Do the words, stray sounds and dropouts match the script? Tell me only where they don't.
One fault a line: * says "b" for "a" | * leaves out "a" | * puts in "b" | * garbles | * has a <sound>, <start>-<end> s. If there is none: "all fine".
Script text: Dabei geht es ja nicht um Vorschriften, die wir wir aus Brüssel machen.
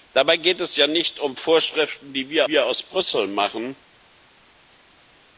all fine